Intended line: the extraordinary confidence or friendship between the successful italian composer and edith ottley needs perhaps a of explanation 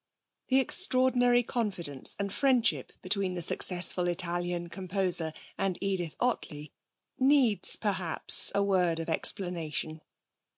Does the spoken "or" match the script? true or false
false